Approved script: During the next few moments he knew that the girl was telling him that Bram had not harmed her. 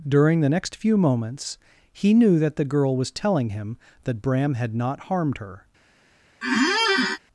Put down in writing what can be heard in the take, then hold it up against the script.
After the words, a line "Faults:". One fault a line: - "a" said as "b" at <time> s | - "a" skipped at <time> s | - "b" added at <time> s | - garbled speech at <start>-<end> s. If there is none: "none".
During the next few moments he knew that the girl was telling him that Bram had not harmed her.
Faults:
none